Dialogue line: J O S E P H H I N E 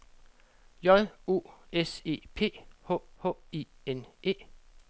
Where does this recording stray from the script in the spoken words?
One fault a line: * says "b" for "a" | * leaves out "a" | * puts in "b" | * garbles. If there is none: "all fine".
all fine